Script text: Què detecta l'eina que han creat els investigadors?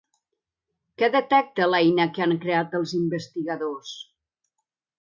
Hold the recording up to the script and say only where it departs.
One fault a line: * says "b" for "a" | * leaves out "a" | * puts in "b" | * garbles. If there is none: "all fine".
all fine